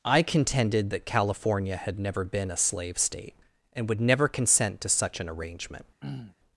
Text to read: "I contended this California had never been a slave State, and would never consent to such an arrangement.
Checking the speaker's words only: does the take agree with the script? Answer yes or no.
no